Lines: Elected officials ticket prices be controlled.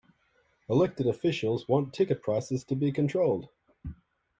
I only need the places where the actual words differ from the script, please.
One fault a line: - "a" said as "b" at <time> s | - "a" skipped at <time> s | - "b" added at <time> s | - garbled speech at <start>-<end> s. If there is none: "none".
- "want" added at 1.7 s
- "to" added at 2.6 s